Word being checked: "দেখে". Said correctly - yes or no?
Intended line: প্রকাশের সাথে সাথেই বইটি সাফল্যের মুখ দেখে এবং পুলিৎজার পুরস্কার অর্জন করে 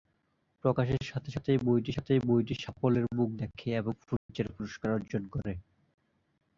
yes